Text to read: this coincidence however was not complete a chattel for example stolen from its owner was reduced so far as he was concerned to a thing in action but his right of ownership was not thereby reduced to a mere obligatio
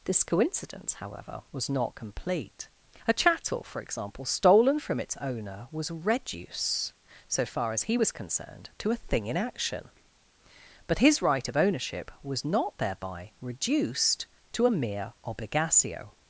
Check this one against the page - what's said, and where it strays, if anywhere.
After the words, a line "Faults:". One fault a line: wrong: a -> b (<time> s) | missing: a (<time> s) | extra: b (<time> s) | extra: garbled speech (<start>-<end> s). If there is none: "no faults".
this coincidence however was not complete a chattel for example stolen from its owner was reduce so far as he was concerned to a thing in action but his right of ownership was not thereby reduced to a mere obligatio
Faults:
wrong: reduced -> reduce (5.9 s)